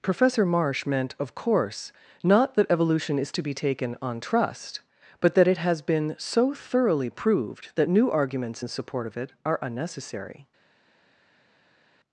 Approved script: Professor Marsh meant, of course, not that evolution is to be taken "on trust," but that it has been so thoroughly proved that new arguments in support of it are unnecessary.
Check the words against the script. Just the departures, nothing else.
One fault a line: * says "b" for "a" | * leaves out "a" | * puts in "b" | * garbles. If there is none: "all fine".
all fine